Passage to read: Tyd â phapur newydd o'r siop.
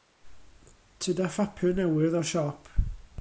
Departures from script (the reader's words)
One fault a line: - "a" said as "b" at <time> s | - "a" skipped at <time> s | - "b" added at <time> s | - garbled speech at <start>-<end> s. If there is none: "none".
none